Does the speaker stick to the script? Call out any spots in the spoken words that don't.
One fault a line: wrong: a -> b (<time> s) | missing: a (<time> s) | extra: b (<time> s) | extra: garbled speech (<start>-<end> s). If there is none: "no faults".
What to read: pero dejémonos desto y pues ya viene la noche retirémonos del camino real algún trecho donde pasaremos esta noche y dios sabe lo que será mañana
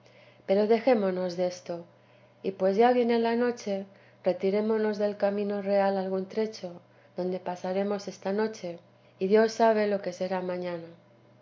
no faults